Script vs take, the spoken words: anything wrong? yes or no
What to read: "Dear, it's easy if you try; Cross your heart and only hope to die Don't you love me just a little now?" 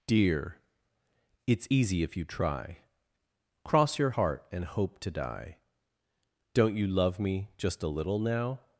yes